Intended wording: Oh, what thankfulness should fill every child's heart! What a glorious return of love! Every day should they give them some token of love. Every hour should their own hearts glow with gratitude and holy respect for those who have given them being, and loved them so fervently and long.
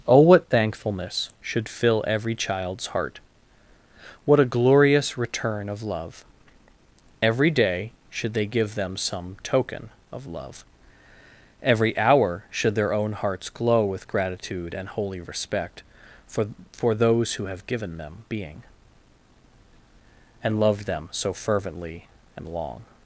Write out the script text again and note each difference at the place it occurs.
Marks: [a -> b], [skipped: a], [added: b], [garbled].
Oh, what thankfulness should fill every child's heart! What a glorious return of love! Every day should they give them some token of love. Every hour should their own hearts glow with gratitude and holy respect for [added: for] those who have given them being, and loved them so fervently and long.